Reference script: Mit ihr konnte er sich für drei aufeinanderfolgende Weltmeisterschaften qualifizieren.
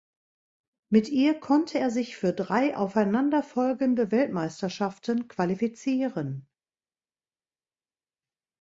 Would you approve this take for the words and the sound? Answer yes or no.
yes